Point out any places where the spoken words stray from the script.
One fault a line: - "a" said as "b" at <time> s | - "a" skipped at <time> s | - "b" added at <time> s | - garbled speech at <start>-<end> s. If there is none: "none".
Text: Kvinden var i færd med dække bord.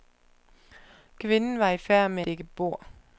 none